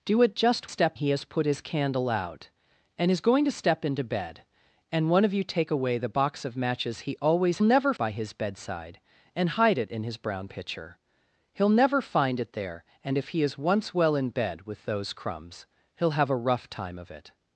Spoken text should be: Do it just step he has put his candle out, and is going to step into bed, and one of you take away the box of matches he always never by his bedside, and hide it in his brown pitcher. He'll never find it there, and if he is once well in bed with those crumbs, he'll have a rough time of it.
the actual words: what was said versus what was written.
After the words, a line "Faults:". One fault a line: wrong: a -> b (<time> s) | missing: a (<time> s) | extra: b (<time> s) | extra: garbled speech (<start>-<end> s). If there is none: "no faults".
Do it just step he has put his candle out, and is going to step into bed, and one of you take away the box of matches he always never by his bedside, and hide it in his brown pitcher. He'll never find it there, and if he is once well in bed with those crumbs, he'll have a rough time of it.
Faults:
no faults